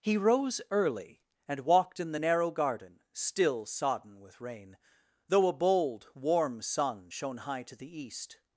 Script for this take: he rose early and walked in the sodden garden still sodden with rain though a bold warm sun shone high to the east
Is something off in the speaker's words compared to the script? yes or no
yes